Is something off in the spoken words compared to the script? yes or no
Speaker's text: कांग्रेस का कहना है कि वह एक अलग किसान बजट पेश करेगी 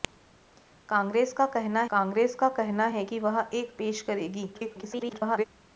yes